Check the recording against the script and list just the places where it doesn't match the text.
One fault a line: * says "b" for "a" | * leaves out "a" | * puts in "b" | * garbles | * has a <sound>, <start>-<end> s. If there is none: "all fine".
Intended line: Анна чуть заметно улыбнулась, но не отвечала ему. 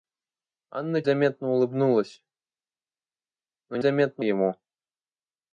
* leaves out "чуть"
* says "заметно" for "отвечала"